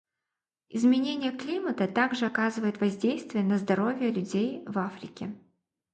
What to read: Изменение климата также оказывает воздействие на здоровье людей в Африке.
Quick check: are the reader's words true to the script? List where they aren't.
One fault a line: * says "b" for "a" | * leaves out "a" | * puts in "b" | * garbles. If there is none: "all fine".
all fine